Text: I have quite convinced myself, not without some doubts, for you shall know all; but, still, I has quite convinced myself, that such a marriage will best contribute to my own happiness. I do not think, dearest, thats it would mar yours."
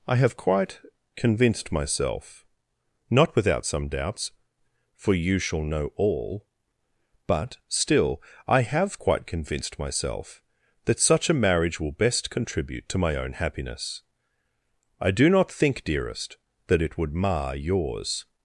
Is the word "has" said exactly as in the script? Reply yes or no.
no